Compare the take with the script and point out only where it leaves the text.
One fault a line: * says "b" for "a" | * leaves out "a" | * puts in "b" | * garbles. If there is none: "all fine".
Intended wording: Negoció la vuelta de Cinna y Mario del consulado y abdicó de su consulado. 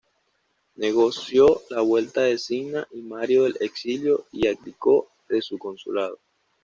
* says "exilio" for "consulado"